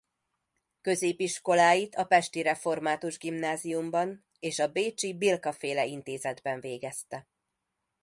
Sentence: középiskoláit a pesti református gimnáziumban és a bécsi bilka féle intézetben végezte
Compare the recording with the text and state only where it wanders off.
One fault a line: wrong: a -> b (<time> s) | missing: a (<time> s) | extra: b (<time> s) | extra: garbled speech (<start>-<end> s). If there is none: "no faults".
no faults